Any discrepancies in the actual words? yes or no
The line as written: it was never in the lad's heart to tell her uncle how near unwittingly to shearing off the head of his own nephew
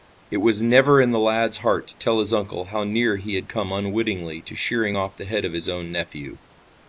yes